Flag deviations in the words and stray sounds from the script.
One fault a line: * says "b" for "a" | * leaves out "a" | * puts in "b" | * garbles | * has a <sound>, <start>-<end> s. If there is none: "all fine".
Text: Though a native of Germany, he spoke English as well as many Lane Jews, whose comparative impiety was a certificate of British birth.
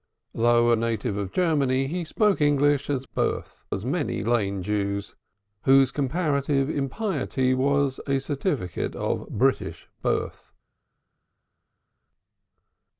* says "birth" for "well"